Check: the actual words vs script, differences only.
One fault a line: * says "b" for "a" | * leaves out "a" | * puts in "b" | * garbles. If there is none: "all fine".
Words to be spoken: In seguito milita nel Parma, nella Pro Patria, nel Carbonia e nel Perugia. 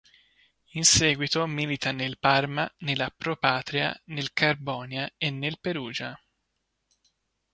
all fine